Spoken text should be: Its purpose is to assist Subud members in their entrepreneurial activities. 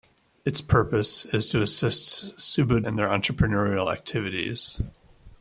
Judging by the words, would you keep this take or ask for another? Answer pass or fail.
fail